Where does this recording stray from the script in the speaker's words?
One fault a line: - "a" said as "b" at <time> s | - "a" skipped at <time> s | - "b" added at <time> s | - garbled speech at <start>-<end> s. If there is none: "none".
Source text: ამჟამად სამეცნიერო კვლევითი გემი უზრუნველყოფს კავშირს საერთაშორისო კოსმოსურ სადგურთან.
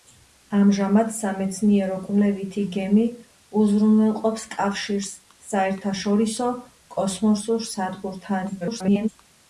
- garbled speech at 8.6-9.1 s